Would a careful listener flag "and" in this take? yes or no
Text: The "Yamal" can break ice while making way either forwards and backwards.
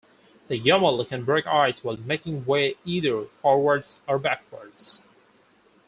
yes